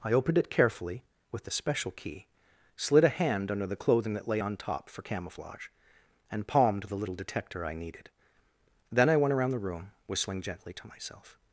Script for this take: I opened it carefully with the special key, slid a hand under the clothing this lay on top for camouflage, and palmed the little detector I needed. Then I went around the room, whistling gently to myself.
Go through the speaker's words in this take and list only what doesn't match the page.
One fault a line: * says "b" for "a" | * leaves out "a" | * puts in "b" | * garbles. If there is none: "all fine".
* says "that" for "this"